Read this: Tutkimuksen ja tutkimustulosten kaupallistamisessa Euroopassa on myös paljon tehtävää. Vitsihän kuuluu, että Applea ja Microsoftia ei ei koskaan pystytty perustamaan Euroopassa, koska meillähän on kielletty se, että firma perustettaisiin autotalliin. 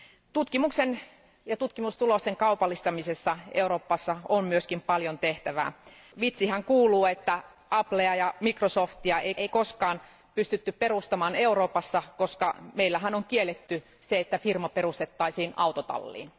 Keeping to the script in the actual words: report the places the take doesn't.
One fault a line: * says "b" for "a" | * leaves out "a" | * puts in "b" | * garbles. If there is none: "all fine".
all fine